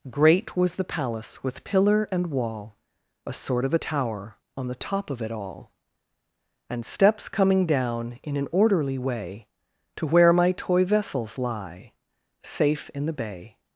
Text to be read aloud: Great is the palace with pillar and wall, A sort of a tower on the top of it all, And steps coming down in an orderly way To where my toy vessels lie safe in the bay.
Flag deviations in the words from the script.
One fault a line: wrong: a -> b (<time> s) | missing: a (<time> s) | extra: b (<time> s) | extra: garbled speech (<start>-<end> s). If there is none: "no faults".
wrong: is -> was (0.6 s)